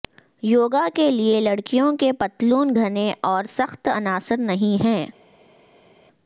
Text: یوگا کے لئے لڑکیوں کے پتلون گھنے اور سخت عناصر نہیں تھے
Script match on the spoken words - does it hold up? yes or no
no